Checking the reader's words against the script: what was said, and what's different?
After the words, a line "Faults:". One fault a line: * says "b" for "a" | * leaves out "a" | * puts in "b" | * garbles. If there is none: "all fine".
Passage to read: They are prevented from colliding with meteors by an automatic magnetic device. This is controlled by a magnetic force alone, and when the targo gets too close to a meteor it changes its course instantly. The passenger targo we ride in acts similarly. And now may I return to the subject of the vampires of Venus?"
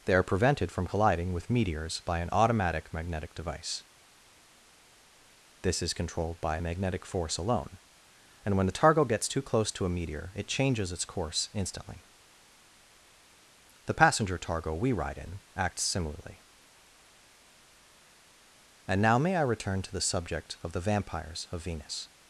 They are prevented from colliding with meteors by an automatic magnetic device. This is controlled by a magnetic force alone, and when the targo gets too close to a meteor it changes its course instantly. The passenger targo we ride in acts similarly. And now may I return to the subject of the vampires of Venus?"
Faults:
all fine